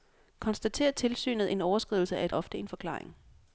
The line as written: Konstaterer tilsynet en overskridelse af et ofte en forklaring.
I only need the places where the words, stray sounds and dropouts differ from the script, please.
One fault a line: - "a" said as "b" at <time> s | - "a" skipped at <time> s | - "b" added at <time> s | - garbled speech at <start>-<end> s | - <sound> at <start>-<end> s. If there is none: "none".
none